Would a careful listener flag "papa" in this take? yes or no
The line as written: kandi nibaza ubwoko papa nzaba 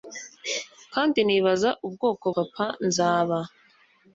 no